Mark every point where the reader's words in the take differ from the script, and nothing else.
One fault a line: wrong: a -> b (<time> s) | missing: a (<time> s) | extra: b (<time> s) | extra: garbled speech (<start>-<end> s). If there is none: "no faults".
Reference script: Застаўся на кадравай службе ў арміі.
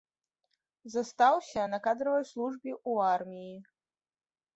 no faults